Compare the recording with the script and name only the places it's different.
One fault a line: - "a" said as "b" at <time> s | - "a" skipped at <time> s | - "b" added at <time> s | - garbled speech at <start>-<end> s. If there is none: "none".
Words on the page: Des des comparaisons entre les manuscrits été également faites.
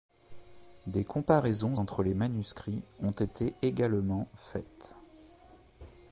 - "des" skipped at 1.0 s
- "ont" added at 3.0 s